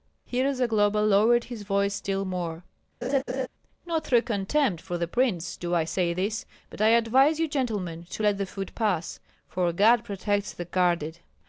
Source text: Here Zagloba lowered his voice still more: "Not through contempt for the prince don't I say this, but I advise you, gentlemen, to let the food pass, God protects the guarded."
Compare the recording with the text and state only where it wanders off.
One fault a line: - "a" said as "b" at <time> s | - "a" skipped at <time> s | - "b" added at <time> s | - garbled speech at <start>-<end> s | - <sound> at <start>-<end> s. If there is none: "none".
- laugh at 3.0-3.5 s
- "don't" said as "do" at 5.6 s
- "for" added at 9.5 s